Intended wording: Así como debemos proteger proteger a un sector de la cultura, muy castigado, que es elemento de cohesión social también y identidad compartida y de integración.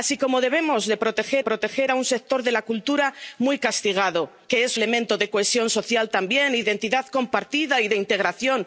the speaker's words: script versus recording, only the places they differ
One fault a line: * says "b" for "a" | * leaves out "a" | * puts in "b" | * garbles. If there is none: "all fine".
all fine